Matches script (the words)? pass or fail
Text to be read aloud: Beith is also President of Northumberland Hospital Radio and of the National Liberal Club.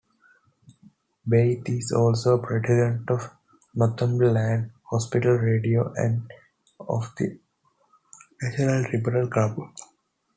pass